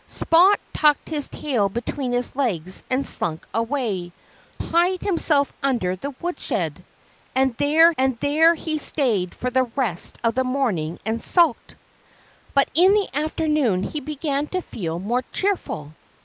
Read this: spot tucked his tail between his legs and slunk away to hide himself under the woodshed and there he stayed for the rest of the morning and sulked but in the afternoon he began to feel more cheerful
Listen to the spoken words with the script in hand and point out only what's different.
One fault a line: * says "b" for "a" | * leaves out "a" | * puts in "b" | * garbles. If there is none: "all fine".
* leaves out "to"
* puts in "and there"